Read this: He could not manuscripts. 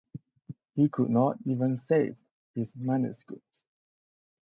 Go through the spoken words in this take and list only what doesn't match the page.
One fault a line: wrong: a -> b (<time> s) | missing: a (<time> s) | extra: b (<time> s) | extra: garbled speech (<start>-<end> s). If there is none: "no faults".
extra: even save his (1.4 s)